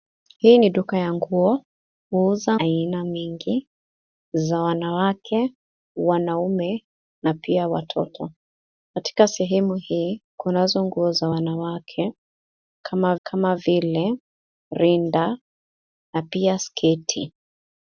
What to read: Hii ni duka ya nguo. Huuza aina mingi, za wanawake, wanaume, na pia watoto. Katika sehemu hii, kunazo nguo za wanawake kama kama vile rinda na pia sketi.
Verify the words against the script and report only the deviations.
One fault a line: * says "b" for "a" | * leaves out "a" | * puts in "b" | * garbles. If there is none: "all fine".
all fine